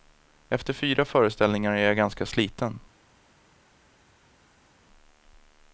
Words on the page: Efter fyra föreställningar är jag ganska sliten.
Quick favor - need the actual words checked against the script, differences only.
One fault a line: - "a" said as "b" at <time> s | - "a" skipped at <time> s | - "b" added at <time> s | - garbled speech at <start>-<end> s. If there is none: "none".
none